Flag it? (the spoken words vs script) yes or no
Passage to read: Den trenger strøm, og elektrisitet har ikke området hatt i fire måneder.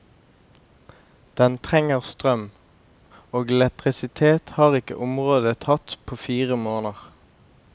yes